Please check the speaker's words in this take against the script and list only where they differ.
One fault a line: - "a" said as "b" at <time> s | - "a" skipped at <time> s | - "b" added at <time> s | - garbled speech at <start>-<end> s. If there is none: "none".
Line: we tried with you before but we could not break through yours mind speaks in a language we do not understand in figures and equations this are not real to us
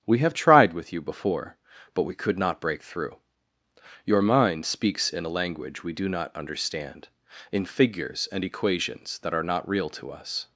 - "have" added at 0.2 s
- "yours" said as "your" at 4.0 s
- "this" said as "that" at 9.2 s